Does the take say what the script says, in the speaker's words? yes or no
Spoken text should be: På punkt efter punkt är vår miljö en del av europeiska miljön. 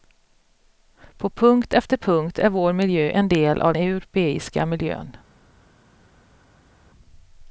yes